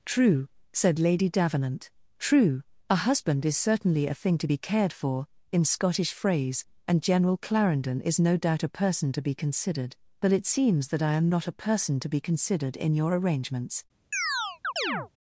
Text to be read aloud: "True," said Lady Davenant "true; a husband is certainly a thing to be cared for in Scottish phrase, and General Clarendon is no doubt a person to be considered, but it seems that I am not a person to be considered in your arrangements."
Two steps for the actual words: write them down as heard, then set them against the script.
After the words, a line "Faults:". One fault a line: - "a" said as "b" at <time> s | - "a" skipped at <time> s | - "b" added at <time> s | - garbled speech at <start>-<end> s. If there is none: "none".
"True," said Lady Davenant "true; a husband is certainly a thing to be cared for in Scottish phrase, and General Clarendon is no doubt a person to be considered, but it seems that I am not a person to be considered in your arrangements."
Faults:
none